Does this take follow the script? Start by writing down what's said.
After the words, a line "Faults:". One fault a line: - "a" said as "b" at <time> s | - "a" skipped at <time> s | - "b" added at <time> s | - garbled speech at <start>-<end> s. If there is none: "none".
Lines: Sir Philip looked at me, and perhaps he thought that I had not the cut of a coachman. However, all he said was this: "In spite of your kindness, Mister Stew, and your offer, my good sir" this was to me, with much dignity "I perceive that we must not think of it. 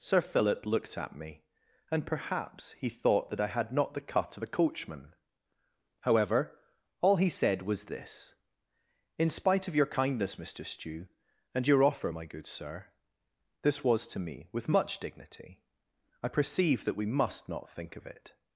Sir Philip looked at me, and perhaps he thought that I had not the cut of a coachman. However, all he said was this: "In spite of your kindness, Mister Stew, and your offer, my good sir" this was to me, with much dignity "I perceive that we must not think of it.
Faults:
none